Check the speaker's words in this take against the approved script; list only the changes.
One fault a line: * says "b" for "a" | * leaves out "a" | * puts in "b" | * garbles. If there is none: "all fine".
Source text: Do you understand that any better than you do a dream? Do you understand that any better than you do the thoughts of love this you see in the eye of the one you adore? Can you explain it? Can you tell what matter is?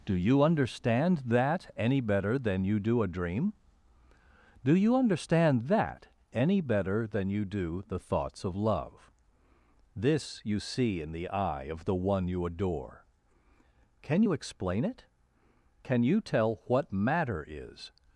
all fine